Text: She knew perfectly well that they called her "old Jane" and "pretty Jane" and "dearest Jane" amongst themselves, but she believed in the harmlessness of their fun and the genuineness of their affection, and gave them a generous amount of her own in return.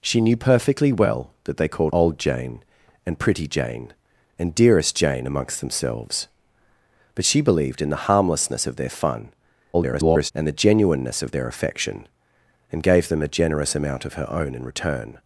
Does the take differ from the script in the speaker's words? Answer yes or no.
yes